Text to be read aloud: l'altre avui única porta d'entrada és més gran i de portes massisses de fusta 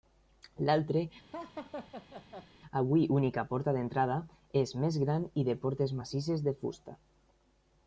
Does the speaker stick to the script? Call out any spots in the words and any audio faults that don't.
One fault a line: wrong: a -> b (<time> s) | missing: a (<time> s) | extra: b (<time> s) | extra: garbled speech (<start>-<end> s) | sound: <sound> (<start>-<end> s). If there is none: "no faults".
sound: laugh (1.3-2.5 s)